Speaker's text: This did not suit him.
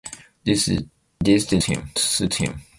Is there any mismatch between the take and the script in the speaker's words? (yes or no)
yes